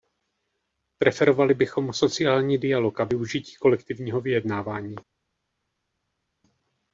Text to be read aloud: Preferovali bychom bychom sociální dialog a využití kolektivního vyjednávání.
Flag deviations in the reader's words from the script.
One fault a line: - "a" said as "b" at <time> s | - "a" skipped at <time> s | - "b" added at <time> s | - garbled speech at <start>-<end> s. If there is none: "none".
- "bychom" skipped at 1.9 s